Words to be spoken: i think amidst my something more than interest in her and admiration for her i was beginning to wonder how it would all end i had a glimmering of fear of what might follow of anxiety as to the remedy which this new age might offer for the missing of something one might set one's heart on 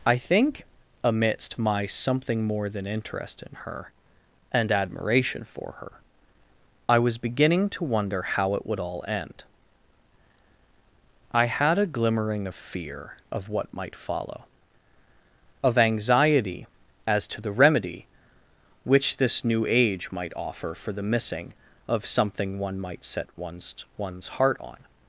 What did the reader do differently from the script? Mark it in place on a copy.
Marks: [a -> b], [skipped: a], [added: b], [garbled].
i think amidst my something more than interest in her and admiration for her i was beginning to wonder how it would all end i had a glimmering of fear of what might follow of anxiety as to the remedy which this new age might offer for the missing of something one might set one's [added: one's] heart on